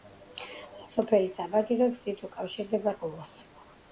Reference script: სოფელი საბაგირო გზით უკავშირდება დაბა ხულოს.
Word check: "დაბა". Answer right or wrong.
wrong